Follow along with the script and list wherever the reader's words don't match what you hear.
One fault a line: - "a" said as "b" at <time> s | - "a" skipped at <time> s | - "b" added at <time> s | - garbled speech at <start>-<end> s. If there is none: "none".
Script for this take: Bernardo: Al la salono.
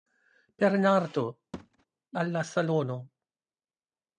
none